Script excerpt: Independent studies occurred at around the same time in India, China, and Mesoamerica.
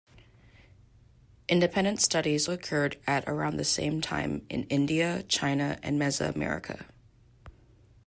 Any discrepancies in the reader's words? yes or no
no